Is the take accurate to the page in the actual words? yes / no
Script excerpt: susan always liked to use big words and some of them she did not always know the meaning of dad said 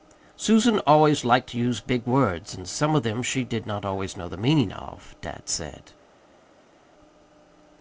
yes